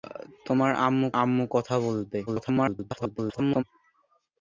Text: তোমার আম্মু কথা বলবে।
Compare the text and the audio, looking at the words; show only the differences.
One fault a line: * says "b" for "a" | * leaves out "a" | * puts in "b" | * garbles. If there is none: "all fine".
* puts in "আম্মু"
* garbles